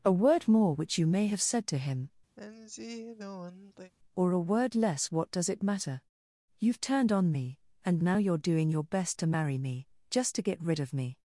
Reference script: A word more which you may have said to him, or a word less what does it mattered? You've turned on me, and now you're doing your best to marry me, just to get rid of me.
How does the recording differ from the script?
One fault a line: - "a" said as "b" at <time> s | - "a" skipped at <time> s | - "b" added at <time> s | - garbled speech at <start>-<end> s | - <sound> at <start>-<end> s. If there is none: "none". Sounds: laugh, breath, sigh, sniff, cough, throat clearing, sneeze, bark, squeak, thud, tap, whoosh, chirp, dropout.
- sigh at 2.4-3.9 s
- "mattered" said as "matter" at 5.6 s